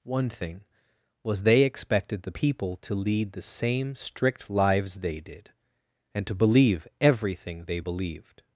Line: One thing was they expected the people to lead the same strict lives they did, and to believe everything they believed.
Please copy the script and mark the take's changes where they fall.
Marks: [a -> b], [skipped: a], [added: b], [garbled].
One thing was they expected the people to lead the same strict lives they did, and to believe everything they believed.